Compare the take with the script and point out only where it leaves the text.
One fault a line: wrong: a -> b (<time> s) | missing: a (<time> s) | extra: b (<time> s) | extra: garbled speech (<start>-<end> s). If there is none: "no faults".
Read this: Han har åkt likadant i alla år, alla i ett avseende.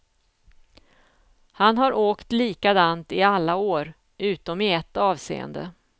wrong: alla -> utom (4.2 s)